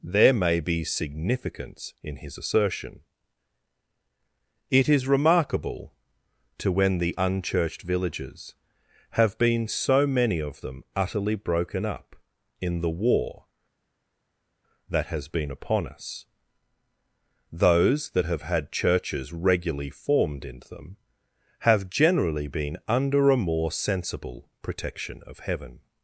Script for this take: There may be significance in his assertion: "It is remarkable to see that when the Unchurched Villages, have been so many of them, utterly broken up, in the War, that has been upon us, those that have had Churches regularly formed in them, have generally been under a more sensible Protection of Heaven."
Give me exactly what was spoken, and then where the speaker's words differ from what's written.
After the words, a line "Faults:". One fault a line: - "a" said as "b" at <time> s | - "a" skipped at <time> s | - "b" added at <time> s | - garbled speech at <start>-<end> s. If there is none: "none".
There may be significance in his assertion: "It is remarkable to when the Unchurched Villages, have been so many of them, utterly broken up, in the War, that has been upon us, those that have had Churches regularly formed in them, have generally been under a more sensible Protection of Heaven."
Faults:
- "see that" skipped at 6.7 s